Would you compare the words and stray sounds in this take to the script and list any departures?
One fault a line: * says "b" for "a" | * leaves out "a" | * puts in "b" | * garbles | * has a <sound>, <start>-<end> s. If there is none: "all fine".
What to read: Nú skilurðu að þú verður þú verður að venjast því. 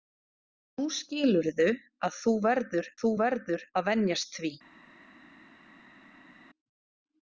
all fine